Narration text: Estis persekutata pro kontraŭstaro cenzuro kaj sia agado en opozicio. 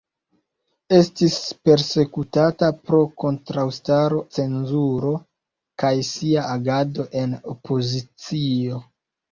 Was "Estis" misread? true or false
false